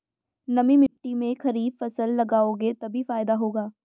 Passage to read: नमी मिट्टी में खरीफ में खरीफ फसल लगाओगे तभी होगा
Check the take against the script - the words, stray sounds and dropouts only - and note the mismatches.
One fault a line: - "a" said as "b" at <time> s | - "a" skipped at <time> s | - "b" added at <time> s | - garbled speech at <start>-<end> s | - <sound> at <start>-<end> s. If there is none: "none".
- dropout at 0.9-1.0 s
- "में खरीफ" skipped at 1.8 s
- "फायदा" added at 3.0 s